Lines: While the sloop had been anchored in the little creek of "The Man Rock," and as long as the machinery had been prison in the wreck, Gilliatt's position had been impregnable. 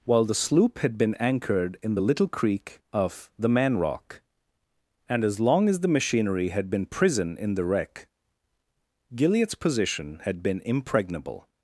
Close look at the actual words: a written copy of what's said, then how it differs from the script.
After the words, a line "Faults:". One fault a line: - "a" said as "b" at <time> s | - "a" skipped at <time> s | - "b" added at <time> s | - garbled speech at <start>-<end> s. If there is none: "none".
While the sloop had been anchored in the little creek of "The Man Rock," and as long as the machinery had been prison in the wreck, Gilliatt's position had been impregnable.
Faults:
none